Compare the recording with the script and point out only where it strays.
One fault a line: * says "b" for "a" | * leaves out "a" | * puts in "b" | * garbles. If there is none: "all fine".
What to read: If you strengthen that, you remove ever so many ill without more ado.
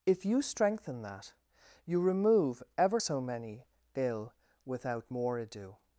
all fine